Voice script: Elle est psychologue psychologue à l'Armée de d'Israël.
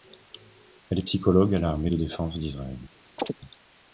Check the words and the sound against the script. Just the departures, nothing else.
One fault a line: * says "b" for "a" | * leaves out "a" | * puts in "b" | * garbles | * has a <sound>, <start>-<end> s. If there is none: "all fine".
* leaves out "psychologue"
* puts in "défense"
* has a chirp, 3.2-3.4 s